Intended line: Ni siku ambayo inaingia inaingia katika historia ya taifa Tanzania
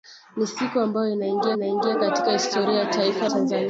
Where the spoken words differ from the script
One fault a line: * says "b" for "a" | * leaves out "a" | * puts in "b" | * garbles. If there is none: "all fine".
all fine